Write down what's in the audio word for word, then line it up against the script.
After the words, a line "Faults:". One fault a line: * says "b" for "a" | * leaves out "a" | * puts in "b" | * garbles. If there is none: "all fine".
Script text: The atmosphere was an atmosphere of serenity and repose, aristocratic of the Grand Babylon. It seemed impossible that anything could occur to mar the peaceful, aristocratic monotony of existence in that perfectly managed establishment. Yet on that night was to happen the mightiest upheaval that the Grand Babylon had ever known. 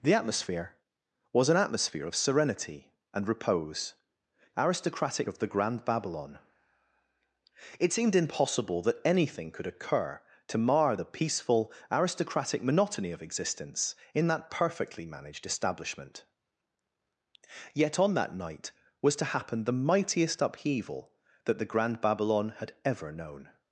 The atmosphere was an atmosphere of serenity and repose, aristocratic of the Grand Babylon. It seemed impossible that anything could occur to mar the peaceful, aristocratic monotony of existence in that perfectly managed establishment. Yet on that night was to happen the mightiest upheaval that the Grand Babylon had ever known.
Faults:
all fine